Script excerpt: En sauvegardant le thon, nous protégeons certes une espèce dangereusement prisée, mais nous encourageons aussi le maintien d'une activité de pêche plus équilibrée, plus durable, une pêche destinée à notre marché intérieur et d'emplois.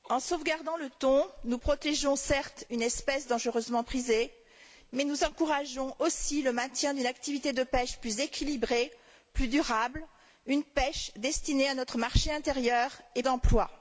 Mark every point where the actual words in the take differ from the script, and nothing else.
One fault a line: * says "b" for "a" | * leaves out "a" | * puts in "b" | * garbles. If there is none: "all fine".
all fine